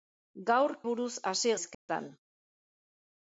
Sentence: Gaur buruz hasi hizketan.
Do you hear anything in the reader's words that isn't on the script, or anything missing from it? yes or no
no